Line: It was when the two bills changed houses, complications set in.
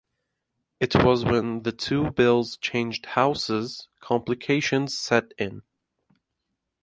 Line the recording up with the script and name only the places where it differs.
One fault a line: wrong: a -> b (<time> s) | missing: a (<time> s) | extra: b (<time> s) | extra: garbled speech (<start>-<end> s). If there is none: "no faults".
no faults